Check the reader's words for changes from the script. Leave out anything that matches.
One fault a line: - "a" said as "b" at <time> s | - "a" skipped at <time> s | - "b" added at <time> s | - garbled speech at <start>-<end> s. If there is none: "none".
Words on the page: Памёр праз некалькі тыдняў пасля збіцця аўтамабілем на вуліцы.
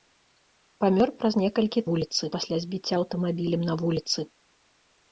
- "тыдняў" said as "вуліцы" at 1.9 s